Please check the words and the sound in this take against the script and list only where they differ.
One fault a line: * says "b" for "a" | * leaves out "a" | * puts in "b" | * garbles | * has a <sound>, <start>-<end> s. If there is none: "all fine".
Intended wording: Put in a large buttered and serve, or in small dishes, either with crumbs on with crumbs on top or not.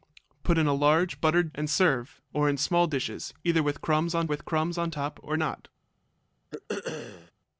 * has a throat clearing, 6.5-7.3 s